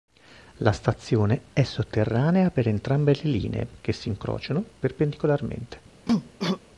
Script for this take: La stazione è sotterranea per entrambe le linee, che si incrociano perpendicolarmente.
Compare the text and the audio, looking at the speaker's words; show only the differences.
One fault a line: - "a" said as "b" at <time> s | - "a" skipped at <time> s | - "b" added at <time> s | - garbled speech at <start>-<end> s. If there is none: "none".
none